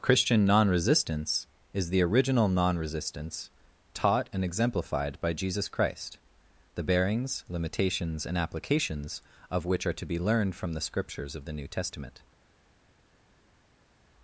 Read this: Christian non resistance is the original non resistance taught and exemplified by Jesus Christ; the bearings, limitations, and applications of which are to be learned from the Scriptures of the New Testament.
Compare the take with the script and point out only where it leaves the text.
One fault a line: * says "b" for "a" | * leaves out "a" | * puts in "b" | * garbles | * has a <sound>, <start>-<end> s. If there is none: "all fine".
all fine